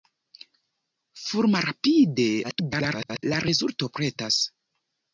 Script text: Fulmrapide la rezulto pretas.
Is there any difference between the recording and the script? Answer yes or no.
yes